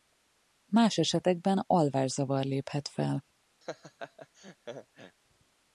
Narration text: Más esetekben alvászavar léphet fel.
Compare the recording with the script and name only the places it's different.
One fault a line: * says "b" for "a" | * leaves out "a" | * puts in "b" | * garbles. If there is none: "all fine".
all fine